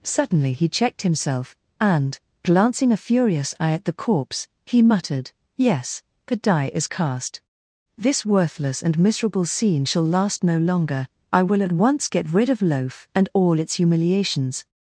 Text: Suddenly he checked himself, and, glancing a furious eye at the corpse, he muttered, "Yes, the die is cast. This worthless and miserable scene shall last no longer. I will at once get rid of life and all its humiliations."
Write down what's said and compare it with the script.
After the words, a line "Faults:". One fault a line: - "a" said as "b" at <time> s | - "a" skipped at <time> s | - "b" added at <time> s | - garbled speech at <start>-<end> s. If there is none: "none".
Suddenly he checked himself, and, glancing a furious eye at the corpse, he muttered, "Yes, the die is cast. This worthless and miserable scene shall last no longer. I will at once get rid of loaf and all its humiliations."
Faults:
- "life" said as "loaf" at 12.6 s